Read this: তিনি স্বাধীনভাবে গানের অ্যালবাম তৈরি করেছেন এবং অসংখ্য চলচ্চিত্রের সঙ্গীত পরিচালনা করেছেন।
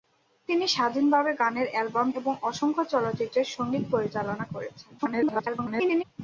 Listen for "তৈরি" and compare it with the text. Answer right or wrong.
wrong